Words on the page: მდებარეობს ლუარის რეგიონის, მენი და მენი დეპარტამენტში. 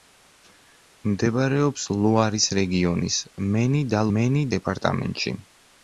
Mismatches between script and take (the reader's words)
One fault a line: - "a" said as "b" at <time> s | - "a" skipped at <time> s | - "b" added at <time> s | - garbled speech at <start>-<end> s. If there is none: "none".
none